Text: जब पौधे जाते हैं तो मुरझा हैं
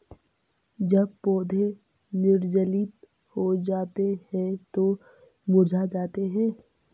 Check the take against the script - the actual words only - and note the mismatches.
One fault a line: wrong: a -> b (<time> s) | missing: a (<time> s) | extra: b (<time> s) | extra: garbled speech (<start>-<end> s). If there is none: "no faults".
extra: निर्जलित हो (2.1 s)
extra: जाते (5.9 s)